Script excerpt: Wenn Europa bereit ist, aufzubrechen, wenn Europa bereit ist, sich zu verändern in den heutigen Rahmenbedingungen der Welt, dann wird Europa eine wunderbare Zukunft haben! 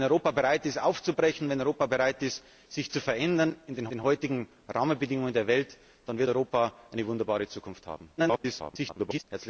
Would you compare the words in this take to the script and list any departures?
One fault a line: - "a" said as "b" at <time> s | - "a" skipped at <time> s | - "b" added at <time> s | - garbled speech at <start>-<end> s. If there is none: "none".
- "den" added at 3.9 s
- garbled speech at 8.2-9.2 s